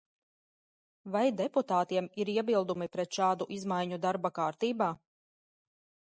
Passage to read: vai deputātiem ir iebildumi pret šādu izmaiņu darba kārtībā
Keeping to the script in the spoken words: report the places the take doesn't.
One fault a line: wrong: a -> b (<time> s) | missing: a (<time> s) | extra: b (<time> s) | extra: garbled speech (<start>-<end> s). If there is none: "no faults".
no faults